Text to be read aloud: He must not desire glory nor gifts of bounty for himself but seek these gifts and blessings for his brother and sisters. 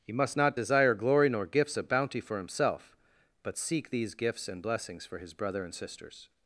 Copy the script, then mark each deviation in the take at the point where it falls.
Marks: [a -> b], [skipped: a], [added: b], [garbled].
He must not desire glory nor gifts of bounty for himself but seek these gifts and blessings for his brother and sisters.